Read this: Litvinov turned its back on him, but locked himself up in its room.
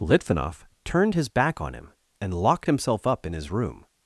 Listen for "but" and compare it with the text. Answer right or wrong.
wrong